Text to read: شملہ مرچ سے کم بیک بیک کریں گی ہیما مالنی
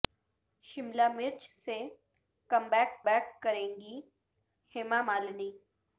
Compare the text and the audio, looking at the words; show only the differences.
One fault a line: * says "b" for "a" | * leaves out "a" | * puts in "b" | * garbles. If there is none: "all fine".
all fine